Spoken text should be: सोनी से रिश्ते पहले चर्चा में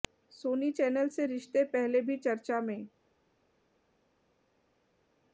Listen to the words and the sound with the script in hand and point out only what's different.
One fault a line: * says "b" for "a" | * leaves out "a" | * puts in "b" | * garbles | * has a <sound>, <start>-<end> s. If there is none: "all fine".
* puts in "चैनल"
* puts in "भी"